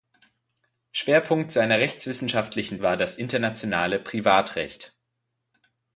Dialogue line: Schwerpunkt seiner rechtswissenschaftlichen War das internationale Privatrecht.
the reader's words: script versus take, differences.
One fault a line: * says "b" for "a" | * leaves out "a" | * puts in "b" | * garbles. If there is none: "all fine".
all fine